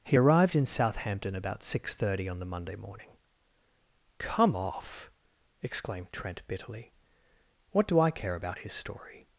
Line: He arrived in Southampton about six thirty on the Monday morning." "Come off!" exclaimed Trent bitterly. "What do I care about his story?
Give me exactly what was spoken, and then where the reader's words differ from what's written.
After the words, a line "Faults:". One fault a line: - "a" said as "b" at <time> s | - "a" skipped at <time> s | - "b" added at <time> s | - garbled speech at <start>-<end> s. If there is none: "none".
He arrived in Southampton about six thirty on the Monday morning." "Come off!" exclaimed Trent bitterly. "What do I care about his story?
Faults:
none